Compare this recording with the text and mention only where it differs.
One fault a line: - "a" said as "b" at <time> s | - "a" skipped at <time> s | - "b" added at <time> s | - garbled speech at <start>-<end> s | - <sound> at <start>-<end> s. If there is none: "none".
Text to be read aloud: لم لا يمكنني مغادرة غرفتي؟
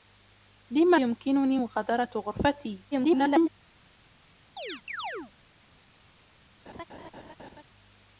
- "لا" skipped at 0.9 s
- garbled speech at 2.9-3.5 s
- chirp at 4.6-5.3 s
- laugh at 6.7-7.6 s